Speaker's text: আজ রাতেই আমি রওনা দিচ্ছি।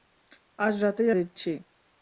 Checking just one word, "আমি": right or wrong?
wrong